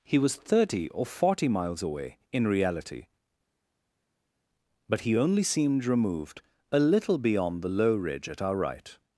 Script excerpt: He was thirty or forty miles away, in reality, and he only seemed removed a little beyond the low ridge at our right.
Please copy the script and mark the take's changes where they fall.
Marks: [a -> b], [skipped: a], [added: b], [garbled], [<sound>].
He was thirty or forty miles away, in reality, [and -> but] he only seemed removed a little beyond the low ridge at our right.